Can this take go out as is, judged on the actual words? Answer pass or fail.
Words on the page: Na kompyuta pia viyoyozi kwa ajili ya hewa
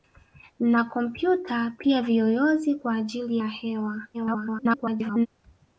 fail